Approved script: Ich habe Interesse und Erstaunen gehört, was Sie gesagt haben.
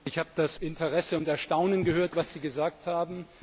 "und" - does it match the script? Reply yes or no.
yes